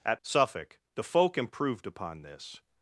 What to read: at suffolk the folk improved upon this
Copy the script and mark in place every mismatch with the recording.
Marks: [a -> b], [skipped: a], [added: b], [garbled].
at suffolk the folk improved upon this